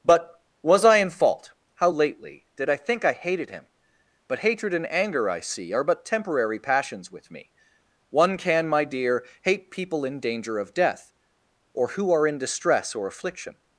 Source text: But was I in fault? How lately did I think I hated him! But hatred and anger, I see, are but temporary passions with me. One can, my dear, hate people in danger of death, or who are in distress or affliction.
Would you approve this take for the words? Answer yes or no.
yes